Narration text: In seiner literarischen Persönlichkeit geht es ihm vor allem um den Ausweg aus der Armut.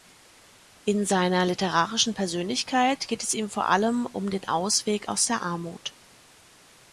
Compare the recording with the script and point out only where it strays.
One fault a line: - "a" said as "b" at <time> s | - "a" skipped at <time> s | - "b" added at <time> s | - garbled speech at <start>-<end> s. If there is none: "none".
none